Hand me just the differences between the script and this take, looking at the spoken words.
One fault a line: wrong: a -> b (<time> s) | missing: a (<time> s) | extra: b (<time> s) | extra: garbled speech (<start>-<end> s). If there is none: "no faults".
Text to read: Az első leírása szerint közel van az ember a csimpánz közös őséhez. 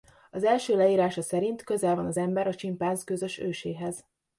no faults